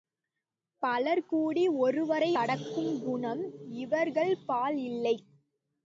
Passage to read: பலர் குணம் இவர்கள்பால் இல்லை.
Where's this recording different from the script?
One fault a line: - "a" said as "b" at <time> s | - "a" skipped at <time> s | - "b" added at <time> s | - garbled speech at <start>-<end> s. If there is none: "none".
- "கூடி ஒருவரை அடக்கும்" added at 1.2 s